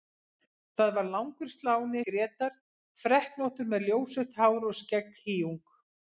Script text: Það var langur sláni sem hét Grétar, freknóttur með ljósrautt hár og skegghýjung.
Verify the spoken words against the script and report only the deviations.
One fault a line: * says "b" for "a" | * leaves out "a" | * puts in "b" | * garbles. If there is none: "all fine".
* leaves out "sem hét"